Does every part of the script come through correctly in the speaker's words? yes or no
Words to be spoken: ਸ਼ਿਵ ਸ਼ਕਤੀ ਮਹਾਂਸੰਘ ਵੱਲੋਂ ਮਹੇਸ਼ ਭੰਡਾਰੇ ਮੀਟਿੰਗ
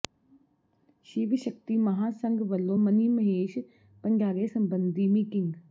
no